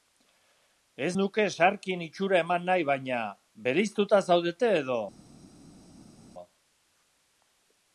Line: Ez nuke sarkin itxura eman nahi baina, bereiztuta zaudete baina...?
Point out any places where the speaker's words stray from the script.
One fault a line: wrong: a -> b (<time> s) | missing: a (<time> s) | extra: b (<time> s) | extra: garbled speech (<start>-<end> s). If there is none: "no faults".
wrong: baina -> edo (4.8 s)